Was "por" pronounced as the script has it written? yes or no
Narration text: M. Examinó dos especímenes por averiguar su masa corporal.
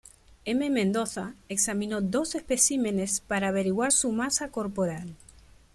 no